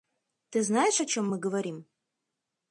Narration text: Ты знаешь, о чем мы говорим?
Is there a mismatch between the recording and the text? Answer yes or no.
no